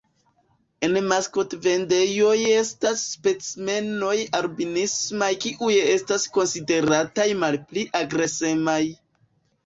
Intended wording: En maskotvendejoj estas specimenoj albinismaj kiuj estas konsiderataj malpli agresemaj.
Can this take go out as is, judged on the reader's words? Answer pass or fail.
pass